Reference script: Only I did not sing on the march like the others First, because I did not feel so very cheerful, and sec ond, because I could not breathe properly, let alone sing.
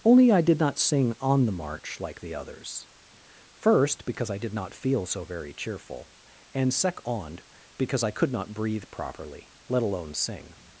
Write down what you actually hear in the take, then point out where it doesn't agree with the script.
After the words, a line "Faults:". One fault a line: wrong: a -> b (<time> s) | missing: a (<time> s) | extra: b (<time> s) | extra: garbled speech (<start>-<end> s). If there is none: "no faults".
Only I did not sing on the march like the others First, because I did not feel so very cheerful, and sec ond, because I could not breathe properly, let alone sing.
Faults:
no faults